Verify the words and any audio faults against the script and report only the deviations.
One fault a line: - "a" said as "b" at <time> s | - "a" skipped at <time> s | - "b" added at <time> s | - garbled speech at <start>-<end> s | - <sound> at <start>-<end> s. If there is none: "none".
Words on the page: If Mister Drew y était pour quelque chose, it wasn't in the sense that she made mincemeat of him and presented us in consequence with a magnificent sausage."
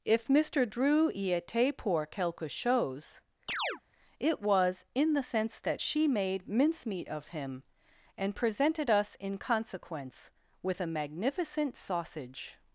- chirp at 3.5-3.8 s
- "wasn't" said as "was" at 4.4 s